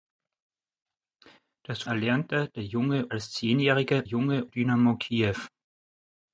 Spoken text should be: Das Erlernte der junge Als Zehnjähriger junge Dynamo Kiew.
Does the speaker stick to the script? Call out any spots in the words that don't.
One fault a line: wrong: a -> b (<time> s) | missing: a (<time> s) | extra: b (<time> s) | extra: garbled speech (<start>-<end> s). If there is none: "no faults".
no faults